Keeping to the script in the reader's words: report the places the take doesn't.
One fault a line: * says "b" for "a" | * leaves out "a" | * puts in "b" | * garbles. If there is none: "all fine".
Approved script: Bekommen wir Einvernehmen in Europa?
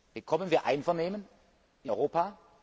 all fine